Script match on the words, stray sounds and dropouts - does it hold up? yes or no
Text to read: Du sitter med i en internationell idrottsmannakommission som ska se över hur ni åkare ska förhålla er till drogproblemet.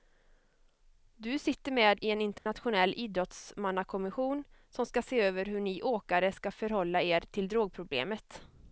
no